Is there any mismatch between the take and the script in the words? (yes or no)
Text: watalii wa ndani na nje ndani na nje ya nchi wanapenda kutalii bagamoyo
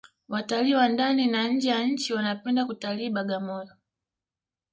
yes